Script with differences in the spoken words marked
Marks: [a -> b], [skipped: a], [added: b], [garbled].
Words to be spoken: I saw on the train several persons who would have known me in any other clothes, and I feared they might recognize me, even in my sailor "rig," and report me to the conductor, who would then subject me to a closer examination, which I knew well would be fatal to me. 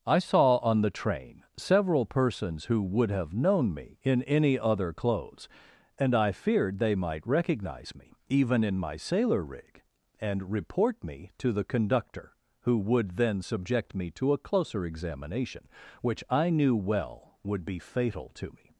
I saw on the train several persons who would have known me in any other clothes, and I feared they might recognize me, even in my sailor "rig," and report me to the conductor, who would then subject me to a closer examination, which I knew well would be fatal to me.